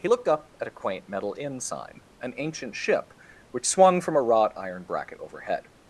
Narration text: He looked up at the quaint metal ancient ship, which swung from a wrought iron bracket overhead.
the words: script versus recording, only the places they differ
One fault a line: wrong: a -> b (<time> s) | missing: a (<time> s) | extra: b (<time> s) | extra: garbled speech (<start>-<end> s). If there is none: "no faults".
wrong: the -> a (0.7 s)
extra: inn sign an (1.4 s)